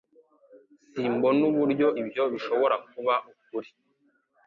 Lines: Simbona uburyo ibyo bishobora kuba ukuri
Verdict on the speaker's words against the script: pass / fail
pass